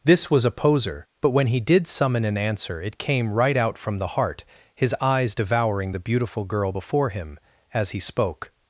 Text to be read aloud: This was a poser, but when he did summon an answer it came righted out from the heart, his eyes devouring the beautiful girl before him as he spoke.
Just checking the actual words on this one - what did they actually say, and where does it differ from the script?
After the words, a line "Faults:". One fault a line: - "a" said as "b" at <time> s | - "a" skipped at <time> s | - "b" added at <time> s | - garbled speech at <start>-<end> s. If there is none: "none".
This was a poser, but when he did summon an answer it came right out from the heart, his eyes devouring the beautiful girl before him as he spoke.
Faults:
- "righted" said as "right" at 3.3 s